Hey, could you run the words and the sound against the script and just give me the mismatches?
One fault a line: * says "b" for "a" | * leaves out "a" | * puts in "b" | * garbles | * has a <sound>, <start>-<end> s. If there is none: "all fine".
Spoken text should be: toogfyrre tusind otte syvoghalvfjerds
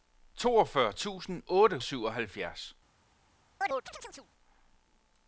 * has a chirp, 3.6-4.3 s